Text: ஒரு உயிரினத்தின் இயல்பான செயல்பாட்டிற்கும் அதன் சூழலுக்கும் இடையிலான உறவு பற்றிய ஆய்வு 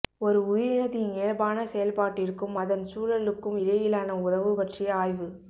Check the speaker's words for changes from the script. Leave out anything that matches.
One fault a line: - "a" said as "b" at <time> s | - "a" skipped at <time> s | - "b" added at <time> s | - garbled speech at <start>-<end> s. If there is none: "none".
none